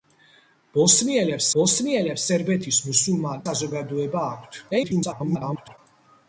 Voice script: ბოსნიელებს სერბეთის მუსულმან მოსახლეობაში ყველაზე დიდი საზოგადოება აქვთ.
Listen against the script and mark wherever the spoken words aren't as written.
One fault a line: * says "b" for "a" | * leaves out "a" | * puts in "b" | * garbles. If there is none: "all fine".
* puts in "ბოსნიელებს"
* leaves out "მოსახლეობაში ყველაზე დიდი"
* garbles